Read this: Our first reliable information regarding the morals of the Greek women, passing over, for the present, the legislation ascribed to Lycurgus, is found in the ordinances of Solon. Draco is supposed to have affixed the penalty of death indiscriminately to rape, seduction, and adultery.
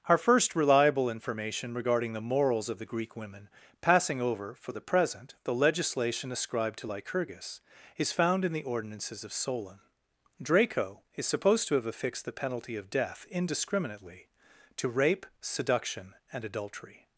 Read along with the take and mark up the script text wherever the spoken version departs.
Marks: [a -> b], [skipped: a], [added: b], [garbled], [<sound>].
Our first reliable information regarding the morals of the Greek women, passing over, for the present, the legislation ascribed to Lycurgus, is found in the ordinances of Solon. Draco is supposed to have affixed the penalty of death indiscriminately to rape, seduction, and adultery.